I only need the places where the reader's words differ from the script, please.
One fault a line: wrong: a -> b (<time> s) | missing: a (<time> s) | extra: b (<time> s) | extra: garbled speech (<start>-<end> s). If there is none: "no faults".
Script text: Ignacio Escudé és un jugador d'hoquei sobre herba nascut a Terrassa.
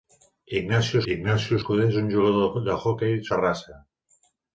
extra: ignacio (1.1 s)
missing: sobre herba nascut (3.2 s)